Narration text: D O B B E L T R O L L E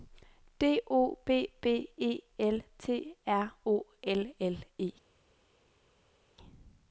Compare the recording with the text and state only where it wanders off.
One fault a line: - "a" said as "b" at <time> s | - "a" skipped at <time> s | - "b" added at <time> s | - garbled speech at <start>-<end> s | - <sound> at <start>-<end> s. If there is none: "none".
none